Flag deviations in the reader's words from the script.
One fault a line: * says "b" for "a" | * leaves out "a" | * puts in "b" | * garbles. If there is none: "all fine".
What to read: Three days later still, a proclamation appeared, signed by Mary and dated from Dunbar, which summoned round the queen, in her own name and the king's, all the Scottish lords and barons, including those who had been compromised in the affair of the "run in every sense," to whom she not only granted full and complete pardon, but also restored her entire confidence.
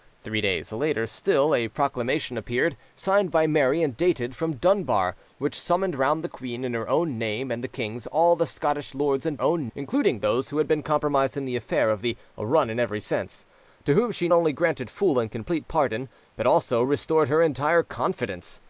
* says "own" for "barons"
* leaves out "not"